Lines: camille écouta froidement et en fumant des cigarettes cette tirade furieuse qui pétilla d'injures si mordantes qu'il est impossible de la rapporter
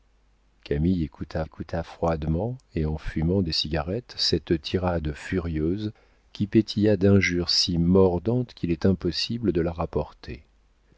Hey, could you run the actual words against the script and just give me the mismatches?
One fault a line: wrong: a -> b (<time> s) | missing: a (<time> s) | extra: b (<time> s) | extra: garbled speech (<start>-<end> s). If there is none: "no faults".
extra: écouta (1.4 s)